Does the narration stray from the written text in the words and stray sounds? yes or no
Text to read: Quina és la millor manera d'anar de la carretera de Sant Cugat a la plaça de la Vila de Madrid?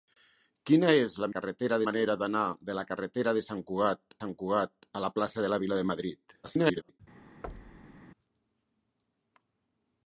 yes